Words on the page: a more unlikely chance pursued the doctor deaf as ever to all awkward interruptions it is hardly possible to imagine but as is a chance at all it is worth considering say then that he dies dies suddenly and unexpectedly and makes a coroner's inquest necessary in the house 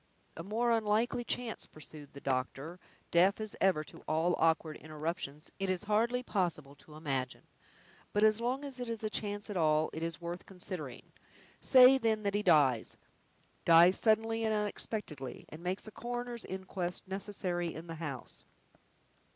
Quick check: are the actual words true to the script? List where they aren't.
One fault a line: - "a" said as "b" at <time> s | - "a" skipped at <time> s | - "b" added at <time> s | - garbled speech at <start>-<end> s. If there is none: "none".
- "long as it" added at 8.4 s